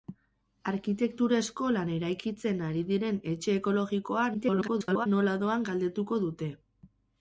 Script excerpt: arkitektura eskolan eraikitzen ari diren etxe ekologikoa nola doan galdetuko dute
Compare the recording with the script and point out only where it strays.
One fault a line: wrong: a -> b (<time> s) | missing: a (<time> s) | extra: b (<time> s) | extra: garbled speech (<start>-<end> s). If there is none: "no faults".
extra: garbled speech (4.3-5.1 s)